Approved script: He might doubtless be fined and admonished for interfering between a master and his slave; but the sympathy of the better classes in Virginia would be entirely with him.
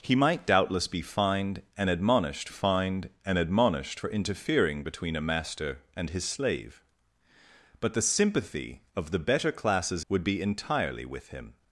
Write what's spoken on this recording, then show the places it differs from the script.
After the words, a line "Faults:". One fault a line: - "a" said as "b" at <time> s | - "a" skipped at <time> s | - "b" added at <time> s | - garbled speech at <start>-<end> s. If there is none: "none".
He might doubtless be fined and admonished fined and admonished for interfering between a master and his slave; but the sympathy of the better classes would be entirely with him.
Faults:
- "fined and admonished" added at 2.5 s
- "in Virginia" skipped at 10.0 s